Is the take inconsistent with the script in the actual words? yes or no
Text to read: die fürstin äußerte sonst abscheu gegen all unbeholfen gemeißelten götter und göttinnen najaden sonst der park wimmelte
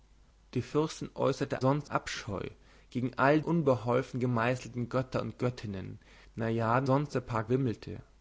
no